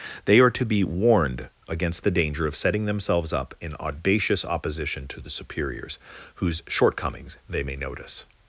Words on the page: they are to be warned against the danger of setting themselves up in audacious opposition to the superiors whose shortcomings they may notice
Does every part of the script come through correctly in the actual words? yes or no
yes